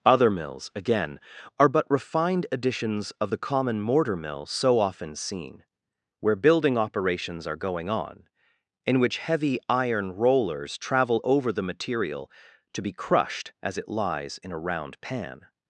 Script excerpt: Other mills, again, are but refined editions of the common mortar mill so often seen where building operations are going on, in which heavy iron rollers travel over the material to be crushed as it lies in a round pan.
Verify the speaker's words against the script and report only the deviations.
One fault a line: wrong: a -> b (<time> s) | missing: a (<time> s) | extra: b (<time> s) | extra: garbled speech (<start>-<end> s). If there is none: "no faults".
no faults